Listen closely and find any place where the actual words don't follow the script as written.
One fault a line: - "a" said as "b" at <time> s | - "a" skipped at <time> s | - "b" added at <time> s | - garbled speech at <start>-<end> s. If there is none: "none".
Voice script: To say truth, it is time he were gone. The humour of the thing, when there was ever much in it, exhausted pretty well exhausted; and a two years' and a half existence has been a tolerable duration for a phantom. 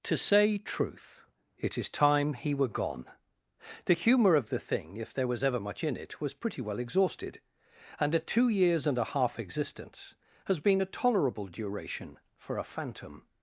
- "when" said as "if" at 5.0 s
- "exhausted" said as "was" at 6.2 s